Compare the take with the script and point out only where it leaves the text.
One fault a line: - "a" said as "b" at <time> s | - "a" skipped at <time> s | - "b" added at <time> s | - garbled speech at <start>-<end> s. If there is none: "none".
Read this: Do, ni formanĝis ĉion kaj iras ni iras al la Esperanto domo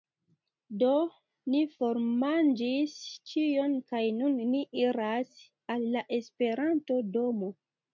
- "iras" said as "nun" at 4.2 s